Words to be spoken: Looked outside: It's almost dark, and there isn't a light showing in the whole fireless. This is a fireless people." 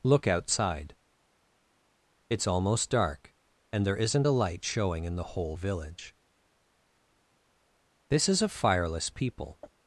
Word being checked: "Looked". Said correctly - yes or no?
no